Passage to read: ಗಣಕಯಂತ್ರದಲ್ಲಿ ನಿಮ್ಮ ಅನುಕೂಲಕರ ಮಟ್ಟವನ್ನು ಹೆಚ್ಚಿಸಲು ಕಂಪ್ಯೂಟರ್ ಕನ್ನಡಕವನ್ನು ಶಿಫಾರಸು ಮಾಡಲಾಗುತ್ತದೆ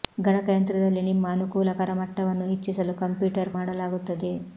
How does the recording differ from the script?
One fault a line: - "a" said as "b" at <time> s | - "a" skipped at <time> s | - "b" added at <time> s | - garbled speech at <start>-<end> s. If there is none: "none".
- "ಕನ್ನಡಕವನ್ನು ಶಿಫಾರಸು" skipped at 3.5 s